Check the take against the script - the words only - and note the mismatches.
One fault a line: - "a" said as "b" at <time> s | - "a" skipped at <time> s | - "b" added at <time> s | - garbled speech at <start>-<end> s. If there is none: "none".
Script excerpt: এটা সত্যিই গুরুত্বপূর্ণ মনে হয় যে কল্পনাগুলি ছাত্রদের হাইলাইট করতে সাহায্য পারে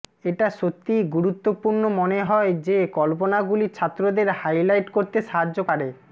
none